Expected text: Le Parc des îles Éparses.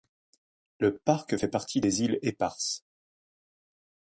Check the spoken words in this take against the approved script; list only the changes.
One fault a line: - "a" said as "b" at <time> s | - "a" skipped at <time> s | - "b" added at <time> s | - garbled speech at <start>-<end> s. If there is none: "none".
- "fait partie" added at 1.3 s